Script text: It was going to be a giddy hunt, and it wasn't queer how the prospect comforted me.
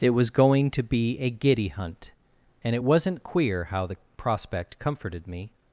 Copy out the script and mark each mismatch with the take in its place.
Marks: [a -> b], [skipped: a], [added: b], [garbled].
It was going to be a giddy hunt, and it wasn't queer how the prospect comforted me.